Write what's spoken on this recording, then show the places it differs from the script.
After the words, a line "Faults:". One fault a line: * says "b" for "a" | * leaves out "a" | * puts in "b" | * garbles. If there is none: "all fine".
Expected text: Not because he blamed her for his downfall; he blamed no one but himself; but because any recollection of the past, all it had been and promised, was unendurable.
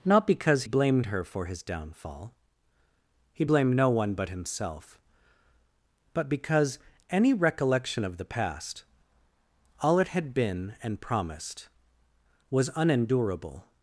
Not because blamed her for his downfall; he blamed no one but himself; but because any recollection of the past, all it had been and promised, was unendurable.
Faults:
* leaves out "he"